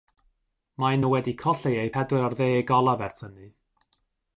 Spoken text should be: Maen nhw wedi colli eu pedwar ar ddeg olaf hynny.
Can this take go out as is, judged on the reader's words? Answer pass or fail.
fail